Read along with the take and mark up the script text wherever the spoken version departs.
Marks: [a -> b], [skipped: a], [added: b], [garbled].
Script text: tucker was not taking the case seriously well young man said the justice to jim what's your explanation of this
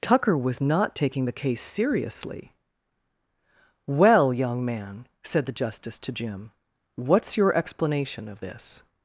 tucker was not taking the case seriously well young man said the justice to jim what's your explanation of this